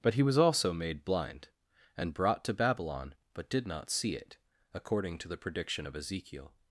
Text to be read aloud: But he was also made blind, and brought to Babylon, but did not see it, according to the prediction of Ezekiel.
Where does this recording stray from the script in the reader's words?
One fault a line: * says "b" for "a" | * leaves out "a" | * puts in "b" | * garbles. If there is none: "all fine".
all fine